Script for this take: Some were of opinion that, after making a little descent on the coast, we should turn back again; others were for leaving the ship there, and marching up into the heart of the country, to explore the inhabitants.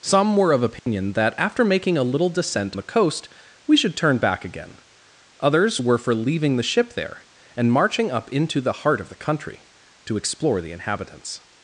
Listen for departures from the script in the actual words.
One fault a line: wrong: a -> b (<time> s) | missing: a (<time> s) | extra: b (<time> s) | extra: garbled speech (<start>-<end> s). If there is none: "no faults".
missing: on (2.8 s)